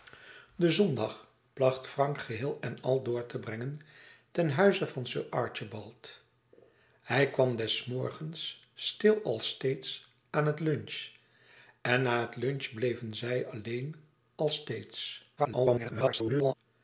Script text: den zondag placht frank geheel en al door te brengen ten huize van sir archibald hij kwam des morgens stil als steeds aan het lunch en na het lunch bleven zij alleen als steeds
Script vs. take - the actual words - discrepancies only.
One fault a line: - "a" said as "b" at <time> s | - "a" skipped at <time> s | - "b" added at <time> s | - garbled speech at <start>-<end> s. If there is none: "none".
- garbled speech at 15.4-16.5 s